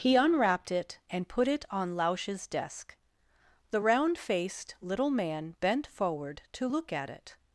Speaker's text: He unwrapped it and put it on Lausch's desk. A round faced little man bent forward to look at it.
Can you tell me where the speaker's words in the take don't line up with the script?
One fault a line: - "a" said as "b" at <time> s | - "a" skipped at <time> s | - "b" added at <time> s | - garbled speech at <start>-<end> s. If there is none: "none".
- "A" said as "The" at 3.7 s